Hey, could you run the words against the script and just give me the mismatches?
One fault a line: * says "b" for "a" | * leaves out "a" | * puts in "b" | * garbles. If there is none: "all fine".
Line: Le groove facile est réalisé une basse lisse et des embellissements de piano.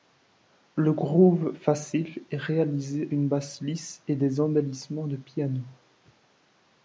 all fine